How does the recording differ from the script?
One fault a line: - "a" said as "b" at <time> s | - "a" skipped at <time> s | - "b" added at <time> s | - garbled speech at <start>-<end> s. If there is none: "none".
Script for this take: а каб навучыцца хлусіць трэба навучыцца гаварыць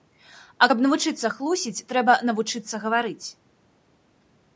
none